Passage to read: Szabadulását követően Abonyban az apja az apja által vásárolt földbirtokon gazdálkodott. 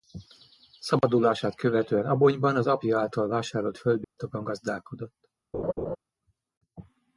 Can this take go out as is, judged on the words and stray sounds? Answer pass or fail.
fail